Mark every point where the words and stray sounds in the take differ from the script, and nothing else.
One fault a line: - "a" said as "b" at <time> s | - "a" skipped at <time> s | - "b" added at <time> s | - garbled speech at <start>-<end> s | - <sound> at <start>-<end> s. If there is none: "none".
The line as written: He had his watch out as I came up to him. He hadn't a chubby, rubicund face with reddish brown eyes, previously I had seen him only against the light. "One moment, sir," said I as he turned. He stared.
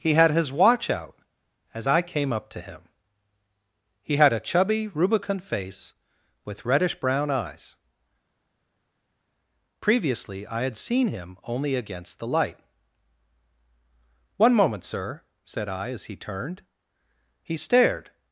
- "hadn't" said as "had" at 4.2 s